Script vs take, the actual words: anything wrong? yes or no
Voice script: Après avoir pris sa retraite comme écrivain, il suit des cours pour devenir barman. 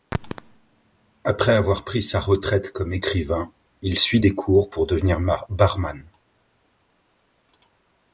no